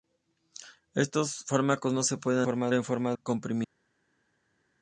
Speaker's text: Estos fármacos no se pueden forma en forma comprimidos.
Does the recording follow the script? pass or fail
pass